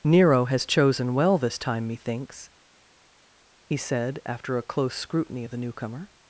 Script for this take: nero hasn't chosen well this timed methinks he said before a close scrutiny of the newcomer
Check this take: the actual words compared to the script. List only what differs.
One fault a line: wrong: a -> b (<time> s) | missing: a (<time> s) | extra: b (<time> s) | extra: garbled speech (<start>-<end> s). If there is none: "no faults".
wrong: hasn't -> has (0.5 s)
wrong: timed -> time (1.6 s)
wrong: before -> after (4.3 s)